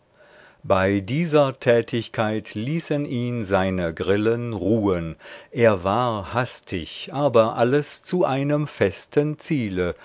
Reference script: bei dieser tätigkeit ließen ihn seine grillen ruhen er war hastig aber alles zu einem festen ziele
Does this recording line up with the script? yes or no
yes